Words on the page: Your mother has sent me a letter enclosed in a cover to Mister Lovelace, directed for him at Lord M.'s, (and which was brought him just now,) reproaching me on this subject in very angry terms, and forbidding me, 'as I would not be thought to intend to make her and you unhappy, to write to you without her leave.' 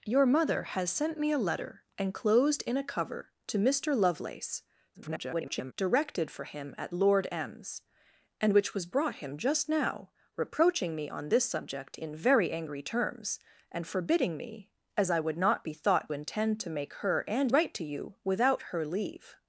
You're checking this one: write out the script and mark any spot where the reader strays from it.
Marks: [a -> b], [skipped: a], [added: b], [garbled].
Your mother has sent me a letter enclosed in a cover to Mister Lovelace, [garbled] directed for him at Lord M.'s, (and which was brought him just now,) reproaching me on this subject in very angry terms, and forbidding me, 'as I would not be thought [skipped: to] intend to make her and [skipped: you unhappy, to] write to you without her leave.'